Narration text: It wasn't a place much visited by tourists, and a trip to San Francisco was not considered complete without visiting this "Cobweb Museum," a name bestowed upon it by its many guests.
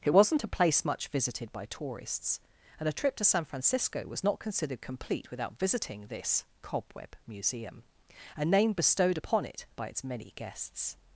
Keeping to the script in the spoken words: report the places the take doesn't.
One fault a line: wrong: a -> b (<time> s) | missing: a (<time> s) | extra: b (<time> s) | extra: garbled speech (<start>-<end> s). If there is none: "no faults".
no faults